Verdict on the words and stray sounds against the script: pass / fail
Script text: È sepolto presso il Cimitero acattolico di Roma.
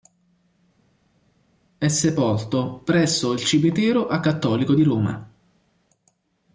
pass